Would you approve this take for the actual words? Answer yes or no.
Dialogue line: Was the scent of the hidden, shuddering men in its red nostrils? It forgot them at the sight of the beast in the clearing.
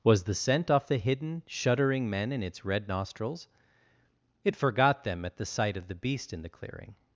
no